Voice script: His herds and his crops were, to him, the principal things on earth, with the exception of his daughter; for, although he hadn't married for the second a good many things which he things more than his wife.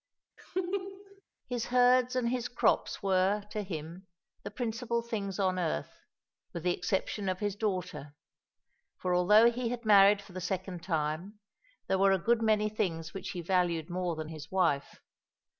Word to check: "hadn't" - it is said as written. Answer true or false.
false